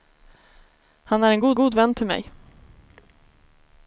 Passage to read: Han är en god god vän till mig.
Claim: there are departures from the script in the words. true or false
false